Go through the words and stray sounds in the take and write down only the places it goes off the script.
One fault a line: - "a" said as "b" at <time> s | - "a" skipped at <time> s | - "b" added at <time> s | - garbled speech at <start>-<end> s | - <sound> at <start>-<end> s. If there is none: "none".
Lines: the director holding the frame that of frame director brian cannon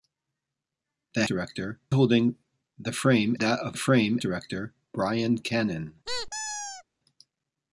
- squeak at 6.1-6.8 s